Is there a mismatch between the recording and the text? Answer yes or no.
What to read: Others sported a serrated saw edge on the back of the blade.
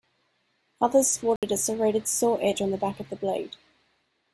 no